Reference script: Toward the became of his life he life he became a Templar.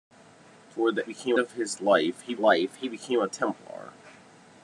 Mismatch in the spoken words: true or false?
false